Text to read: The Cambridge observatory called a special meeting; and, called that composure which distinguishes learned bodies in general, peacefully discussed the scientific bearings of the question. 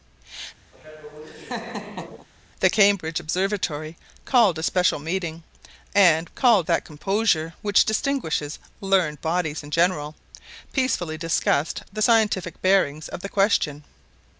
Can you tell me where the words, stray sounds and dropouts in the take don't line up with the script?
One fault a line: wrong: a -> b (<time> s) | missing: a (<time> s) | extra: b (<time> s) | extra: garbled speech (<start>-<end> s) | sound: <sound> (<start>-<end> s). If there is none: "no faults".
sound: laugh (0.7-2.3 s)